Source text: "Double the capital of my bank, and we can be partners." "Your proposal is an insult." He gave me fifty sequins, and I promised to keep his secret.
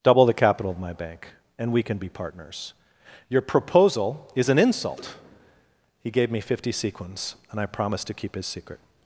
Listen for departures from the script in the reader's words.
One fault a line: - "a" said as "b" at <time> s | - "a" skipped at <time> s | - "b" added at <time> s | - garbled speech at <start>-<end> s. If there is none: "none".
none